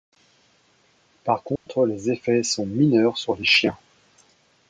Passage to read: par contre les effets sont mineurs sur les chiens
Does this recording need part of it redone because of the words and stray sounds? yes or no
yes